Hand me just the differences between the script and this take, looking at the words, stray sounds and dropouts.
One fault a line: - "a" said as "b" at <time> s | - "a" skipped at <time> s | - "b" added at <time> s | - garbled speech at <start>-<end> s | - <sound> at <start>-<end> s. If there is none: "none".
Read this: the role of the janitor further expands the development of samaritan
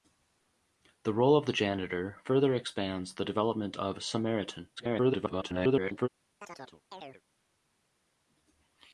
- garbled speech at 4.8-6.1 s
- chirp at 6.4-7.2 s